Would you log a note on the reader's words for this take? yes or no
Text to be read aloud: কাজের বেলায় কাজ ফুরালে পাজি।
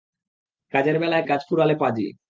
no